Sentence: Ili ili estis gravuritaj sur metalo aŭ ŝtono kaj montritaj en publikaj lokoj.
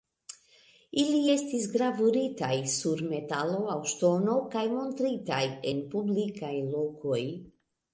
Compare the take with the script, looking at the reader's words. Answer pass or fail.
fail